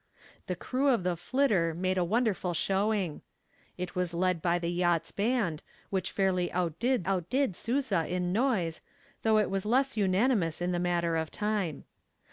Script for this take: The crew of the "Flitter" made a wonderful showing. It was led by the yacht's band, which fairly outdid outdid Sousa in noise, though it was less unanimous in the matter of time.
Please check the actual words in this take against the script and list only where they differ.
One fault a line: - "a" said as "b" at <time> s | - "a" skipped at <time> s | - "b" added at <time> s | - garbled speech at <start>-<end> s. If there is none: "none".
none